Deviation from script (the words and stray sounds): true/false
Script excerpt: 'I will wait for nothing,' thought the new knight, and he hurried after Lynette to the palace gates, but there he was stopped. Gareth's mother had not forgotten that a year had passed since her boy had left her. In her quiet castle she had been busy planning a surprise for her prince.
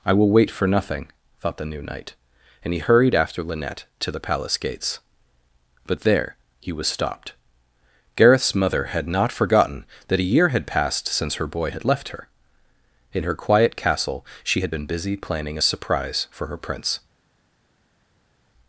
false